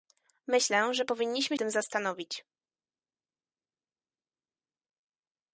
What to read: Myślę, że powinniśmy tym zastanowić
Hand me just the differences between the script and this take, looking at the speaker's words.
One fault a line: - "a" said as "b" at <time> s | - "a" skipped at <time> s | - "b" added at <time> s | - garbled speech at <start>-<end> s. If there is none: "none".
none